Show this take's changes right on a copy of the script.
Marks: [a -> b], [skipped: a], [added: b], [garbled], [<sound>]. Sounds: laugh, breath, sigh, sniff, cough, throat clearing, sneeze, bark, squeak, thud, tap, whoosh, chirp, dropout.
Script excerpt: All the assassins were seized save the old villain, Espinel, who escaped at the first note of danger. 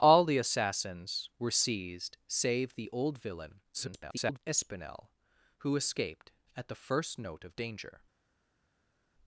All the assassins were seized save the old villain, [garbled] Espinel, who escaped at the first note of danger.